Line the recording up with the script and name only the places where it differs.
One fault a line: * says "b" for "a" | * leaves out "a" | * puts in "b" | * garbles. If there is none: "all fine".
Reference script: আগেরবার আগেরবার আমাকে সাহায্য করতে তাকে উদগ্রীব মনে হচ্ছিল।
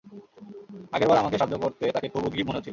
* leaves out "আগেরবার"
* puts in "খুব"